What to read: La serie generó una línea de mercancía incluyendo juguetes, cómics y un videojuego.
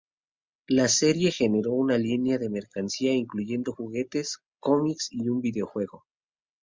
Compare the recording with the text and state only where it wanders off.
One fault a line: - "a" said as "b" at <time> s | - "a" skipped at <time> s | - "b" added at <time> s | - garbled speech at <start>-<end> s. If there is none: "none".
none